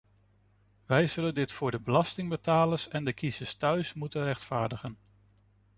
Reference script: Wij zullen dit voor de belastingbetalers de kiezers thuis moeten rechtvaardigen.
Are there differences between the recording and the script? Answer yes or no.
yes